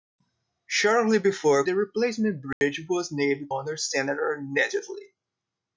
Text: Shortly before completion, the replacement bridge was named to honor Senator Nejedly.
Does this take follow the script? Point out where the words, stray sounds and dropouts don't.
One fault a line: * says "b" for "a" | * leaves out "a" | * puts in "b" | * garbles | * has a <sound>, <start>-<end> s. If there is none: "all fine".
* leaves out "completion"
* has a dropout, 2.5-2.6 s
* leaves out "to"